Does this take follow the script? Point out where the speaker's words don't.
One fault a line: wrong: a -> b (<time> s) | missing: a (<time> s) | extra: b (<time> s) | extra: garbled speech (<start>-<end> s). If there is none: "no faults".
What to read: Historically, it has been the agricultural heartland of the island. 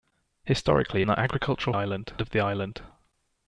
missing: it has been (1.0 s)
wrong: heartland -> island (1.7 s)